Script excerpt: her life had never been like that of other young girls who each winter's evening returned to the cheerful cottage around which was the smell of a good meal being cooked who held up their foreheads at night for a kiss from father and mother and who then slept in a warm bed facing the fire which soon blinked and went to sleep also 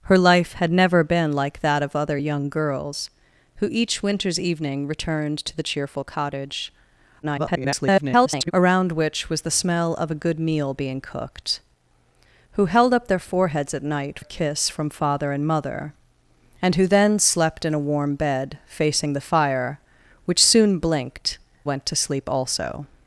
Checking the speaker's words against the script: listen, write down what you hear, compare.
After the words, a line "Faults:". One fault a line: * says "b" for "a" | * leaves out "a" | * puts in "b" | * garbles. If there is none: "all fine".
her life had never been like that of other young girls who each winter's evening returned to the cheerful cottage [garbled] around which was the smell of a good meal being cooked who held up their foreheads at night a kiss from father and mother and who then slept in a warm bed facing the fire which soon blinked went to sleep also
Faults:
* garbles
* leaves out "for"
* leaves out "and"